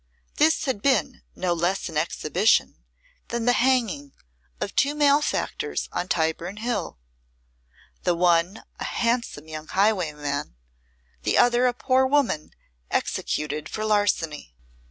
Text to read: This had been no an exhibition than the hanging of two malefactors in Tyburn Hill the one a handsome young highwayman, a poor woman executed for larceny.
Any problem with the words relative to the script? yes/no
yes